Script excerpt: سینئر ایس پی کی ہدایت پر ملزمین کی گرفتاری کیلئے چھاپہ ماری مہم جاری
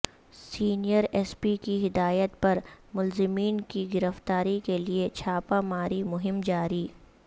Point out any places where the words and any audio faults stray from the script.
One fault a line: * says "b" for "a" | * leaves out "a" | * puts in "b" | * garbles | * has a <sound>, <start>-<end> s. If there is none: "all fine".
all fine